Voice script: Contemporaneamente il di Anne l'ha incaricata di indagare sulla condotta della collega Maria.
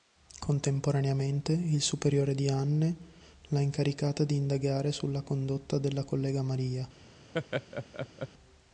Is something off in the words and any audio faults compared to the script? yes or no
yes